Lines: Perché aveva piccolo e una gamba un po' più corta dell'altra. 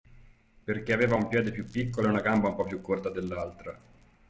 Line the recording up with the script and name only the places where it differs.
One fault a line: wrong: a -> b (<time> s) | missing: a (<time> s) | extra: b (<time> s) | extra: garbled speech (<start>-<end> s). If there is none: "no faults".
extra: un piede più (1.1 s)